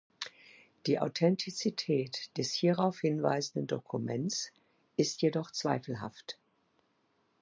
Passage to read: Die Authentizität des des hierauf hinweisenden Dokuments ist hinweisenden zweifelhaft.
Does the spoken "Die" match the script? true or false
true